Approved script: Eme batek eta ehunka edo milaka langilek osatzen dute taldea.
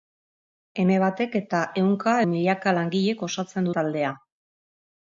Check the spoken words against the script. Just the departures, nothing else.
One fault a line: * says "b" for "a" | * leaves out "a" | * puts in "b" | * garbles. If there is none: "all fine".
* leaves out "edo"
* leaves out "dute"